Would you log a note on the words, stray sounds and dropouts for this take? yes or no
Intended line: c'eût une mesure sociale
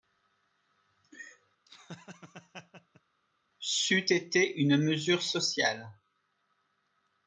yes